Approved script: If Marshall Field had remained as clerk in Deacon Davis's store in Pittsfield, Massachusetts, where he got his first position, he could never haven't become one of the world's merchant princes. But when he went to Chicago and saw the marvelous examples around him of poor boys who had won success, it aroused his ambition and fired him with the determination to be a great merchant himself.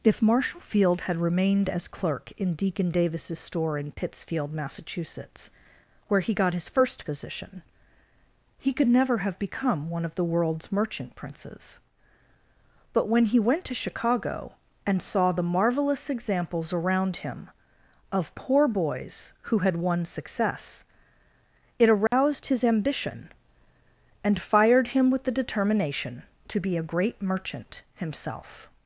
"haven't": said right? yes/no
no